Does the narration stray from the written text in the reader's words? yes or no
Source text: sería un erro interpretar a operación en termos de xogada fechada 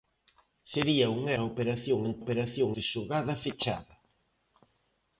yes